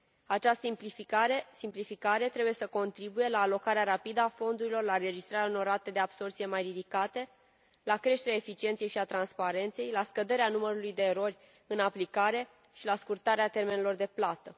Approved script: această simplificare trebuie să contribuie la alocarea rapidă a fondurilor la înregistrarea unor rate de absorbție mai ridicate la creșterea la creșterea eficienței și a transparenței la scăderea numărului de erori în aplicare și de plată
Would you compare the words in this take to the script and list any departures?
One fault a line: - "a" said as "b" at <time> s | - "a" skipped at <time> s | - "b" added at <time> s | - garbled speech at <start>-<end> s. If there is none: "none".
- "la creșterea" skipped at 8.4 s
- "la scurtarea termenelor" added at 12.9 s